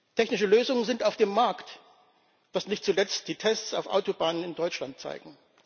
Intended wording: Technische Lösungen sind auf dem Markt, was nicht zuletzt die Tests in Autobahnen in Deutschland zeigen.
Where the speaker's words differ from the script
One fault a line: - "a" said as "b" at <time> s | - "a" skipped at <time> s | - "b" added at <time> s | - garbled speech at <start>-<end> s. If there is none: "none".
- "in" said as "auf" at 3.7 s